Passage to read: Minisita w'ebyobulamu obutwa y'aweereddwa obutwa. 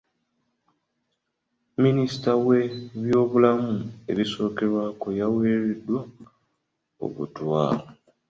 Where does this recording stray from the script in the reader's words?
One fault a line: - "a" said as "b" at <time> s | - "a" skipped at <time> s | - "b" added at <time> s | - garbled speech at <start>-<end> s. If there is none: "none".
- "obutwa" said as "ebisookerwako" at 4.1 s